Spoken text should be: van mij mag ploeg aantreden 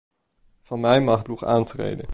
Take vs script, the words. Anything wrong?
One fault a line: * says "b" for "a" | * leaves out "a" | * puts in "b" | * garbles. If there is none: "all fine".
all fine